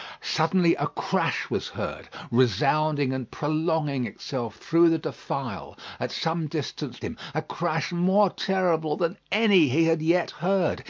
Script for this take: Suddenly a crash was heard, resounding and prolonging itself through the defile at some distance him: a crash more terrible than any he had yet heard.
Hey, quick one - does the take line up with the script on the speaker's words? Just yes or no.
yes